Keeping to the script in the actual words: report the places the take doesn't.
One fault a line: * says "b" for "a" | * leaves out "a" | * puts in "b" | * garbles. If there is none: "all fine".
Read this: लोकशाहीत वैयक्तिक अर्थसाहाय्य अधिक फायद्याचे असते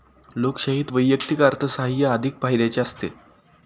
all fine